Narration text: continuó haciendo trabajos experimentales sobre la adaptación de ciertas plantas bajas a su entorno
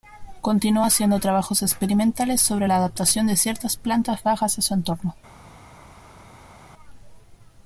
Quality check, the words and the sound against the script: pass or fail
pass